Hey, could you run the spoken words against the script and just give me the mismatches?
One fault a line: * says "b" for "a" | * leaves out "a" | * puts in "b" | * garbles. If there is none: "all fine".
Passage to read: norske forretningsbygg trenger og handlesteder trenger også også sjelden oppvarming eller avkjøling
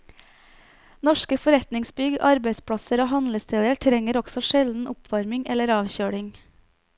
* says "arbeidsplasser" for "trenger"
* leaves out "også"